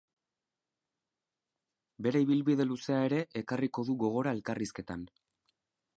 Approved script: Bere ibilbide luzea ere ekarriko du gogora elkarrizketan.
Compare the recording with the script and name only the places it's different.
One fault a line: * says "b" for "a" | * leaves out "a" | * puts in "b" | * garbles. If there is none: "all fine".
all fine